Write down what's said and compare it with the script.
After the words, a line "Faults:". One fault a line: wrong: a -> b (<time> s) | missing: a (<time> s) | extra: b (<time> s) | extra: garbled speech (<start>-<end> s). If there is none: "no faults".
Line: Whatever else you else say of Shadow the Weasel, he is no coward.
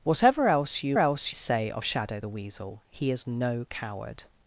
Whatever else you else say of Shadow the Weasel, he is no coward.
Faults:
no faults